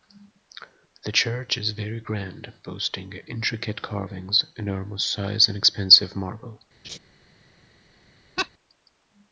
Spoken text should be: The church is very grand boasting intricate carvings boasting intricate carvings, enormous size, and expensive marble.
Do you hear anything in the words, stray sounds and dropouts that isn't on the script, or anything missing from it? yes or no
yes